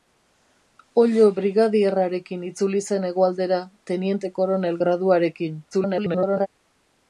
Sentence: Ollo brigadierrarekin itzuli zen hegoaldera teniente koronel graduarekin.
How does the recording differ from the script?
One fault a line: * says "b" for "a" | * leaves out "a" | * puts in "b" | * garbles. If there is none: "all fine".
* garbles